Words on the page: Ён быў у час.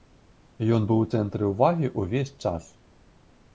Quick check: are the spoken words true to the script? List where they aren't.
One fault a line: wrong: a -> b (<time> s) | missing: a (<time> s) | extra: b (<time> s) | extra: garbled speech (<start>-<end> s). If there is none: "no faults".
extra: цэнтры ўвагі ўвесь (1.1 s)